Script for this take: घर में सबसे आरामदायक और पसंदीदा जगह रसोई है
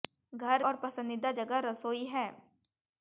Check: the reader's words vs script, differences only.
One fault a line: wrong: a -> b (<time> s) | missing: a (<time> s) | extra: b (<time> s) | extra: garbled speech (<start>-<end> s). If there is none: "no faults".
missing: में सबसे आरामदायक (0.6 s)